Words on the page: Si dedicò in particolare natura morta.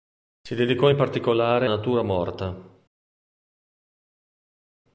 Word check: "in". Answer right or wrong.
right